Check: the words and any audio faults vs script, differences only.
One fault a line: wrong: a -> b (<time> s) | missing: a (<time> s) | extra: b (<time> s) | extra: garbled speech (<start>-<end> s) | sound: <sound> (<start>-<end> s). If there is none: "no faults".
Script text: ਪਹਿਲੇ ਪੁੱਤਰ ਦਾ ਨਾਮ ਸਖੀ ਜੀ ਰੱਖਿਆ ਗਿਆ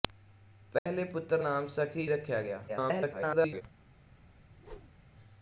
sound: dropout (0.8-0.9 s)
missing: ਦਾ (1.4 s)
missing: ਜੀ (2.1 s)
extra: garbled speech (2.7-3.6 s)
sound: whoosh (4.4-5.0 s)